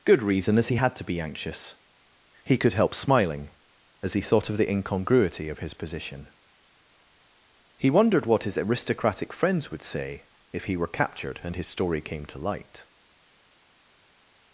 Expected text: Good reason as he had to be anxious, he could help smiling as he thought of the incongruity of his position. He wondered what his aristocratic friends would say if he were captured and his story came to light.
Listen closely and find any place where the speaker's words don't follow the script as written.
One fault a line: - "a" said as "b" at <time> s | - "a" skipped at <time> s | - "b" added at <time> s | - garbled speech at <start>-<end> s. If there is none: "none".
none